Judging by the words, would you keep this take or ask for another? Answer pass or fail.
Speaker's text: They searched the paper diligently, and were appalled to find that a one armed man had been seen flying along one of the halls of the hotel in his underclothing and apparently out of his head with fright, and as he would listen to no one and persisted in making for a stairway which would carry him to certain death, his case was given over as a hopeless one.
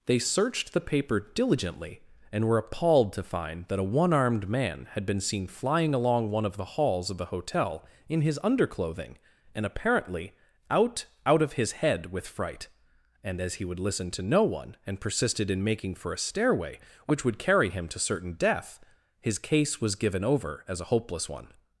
fail